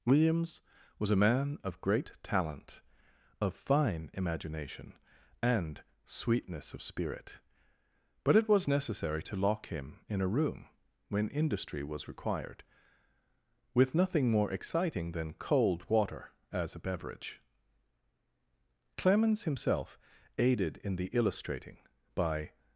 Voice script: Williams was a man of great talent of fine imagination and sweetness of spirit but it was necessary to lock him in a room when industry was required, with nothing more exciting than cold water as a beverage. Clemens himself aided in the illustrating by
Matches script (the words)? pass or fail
pass